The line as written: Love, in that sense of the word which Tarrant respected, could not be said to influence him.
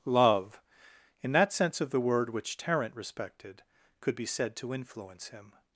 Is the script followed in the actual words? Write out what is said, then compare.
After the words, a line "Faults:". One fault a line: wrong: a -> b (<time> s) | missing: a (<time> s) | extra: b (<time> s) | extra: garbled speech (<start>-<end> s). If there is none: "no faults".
Love, in that sense of the word which Tarrant respected, could be said to influence him.
Faults:
missing: not (4.2 s)